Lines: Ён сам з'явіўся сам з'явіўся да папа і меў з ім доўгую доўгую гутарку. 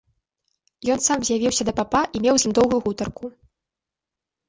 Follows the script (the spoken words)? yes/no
no